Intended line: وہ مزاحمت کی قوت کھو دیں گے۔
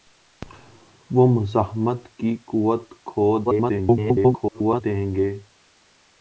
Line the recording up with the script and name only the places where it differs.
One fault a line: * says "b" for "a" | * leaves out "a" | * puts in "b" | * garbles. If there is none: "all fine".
* garbles